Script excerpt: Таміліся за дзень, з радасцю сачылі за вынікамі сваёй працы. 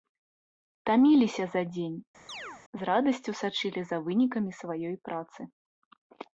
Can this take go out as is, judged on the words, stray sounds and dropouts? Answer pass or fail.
fail